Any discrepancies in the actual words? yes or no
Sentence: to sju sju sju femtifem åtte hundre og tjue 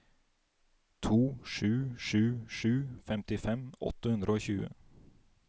no